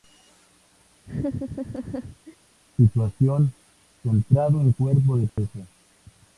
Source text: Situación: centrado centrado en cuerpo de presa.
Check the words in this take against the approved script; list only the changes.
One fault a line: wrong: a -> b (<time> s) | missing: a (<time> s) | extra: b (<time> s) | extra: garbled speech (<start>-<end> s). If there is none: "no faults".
missing: centrado (4.6 s)